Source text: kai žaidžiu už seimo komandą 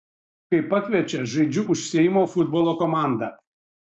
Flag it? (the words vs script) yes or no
yes